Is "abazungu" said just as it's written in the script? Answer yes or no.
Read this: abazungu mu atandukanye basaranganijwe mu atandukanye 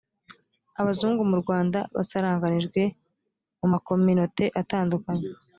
yes